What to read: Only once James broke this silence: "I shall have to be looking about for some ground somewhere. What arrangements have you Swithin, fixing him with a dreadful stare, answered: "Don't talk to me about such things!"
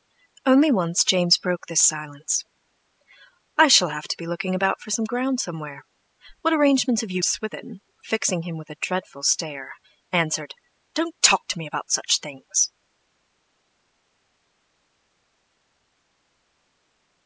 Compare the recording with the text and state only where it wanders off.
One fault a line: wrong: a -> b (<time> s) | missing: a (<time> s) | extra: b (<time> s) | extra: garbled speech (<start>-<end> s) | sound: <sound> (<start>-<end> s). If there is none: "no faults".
no faults